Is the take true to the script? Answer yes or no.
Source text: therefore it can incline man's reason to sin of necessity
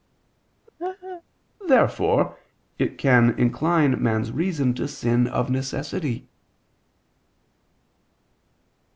yes